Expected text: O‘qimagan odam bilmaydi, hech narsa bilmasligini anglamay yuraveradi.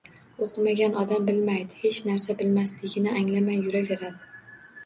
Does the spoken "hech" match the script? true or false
true